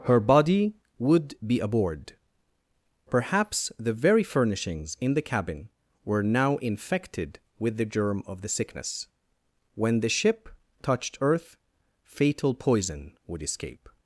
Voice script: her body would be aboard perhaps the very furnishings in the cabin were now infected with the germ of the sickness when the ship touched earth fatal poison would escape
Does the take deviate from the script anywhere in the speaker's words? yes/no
no